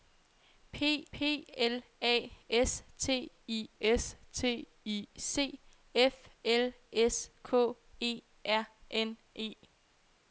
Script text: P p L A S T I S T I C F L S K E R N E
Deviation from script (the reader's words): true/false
false